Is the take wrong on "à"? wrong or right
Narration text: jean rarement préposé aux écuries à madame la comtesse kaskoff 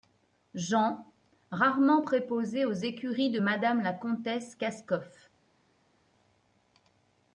wrong